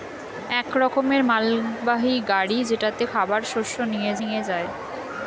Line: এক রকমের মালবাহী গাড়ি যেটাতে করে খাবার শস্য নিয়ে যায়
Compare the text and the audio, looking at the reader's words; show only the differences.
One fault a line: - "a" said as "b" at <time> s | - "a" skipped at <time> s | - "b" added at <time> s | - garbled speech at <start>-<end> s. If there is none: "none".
- "করে" skipped at 3.0 s
- "নিয়ে" added at 4.2 s